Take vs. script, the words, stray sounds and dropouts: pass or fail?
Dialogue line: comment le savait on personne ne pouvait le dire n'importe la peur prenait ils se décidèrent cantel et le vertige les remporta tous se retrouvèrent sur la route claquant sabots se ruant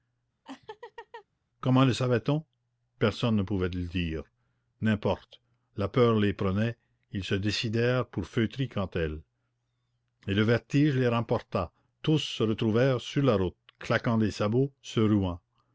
fail